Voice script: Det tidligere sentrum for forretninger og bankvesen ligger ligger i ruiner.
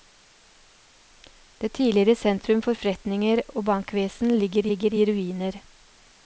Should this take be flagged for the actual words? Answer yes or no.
no